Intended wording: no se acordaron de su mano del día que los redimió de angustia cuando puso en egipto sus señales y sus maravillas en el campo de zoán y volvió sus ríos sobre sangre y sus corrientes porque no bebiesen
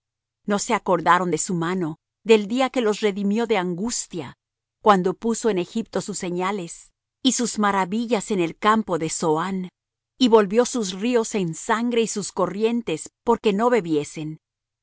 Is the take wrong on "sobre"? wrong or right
wrong